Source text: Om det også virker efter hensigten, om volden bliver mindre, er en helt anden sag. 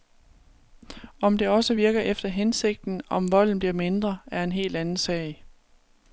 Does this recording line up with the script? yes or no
yes